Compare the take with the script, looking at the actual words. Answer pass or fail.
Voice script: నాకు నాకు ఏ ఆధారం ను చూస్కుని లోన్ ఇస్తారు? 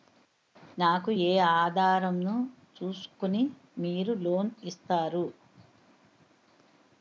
fail